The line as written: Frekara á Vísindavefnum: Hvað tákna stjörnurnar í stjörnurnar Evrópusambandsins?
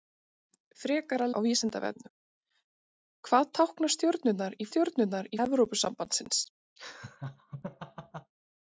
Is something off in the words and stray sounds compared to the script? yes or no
yes